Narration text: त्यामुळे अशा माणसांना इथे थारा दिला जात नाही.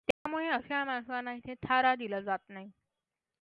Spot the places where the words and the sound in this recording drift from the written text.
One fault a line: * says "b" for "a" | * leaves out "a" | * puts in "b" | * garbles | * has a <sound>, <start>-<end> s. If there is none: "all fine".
* has a dropout, 0.1-0.3 s